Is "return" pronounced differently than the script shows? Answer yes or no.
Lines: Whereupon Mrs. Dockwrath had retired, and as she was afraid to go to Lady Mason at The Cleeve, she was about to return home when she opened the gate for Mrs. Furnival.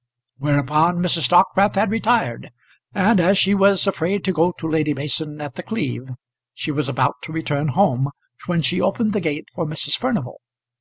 no